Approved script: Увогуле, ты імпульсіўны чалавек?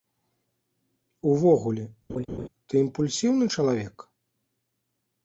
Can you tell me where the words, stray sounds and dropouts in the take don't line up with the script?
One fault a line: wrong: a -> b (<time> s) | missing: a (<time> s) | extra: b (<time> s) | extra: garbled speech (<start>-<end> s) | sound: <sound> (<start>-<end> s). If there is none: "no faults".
sound: laugh (2.1-2.5 s)